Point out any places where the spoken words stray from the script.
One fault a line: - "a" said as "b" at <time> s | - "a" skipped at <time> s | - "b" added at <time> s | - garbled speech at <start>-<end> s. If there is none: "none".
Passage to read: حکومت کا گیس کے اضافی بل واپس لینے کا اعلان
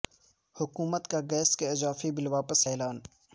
- "لینے کا" skipped at 2.7 s